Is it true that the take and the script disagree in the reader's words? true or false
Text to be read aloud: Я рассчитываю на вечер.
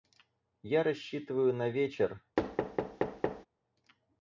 false